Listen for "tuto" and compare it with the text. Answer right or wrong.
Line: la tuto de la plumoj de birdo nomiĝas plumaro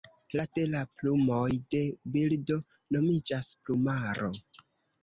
wrong